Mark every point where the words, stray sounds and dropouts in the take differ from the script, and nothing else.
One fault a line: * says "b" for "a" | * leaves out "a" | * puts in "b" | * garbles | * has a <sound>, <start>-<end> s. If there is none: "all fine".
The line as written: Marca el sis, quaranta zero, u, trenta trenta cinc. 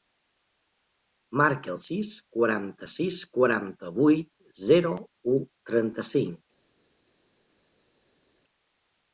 * puts in "sis quaranta vuit"
* leaves out "trenta"